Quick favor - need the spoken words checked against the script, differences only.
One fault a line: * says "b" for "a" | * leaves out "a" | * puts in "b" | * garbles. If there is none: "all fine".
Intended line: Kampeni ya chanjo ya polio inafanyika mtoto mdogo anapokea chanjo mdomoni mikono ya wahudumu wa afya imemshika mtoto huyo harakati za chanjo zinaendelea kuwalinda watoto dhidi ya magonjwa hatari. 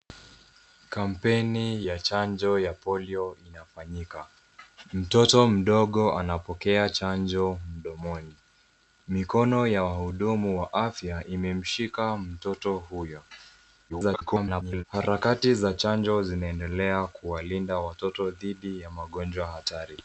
* garbles